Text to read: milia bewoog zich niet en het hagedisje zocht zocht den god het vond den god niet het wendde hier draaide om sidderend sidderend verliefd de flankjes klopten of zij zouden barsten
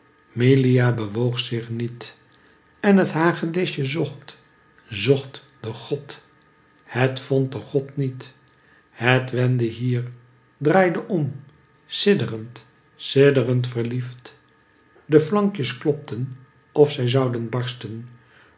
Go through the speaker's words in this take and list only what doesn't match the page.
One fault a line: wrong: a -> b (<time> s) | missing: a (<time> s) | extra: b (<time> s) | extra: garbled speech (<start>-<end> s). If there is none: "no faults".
no faults